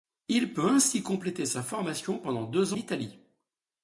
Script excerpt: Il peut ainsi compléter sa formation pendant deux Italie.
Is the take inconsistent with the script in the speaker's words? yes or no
no